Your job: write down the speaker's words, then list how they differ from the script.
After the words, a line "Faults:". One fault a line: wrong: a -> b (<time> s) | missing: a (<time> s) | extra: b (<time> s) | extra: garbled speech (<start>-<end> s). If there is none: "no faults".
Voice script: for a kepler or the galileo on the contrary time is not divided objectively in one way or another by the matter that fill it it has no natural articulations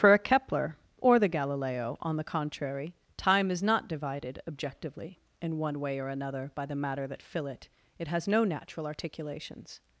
for a kepler or the galileo on the contrary time is not divided objectively in one way or another by the matter that fill it it has no natural articulations
Faults:
no faults